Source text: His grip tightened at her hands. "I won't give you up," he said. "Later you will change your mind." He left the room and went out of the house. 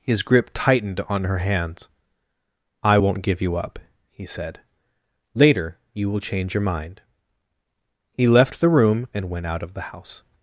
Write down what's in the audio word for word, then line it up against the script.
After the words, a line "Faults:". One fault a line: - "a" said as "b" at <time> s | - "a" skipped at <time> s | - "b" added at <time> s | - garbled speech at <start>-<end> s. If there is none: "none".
His grip tightened on her hands. "I won't give you up," he said. "Later you will change your mind." He left the room and went out of the house.
Faults:
- "at" said as "on" at 1.0 s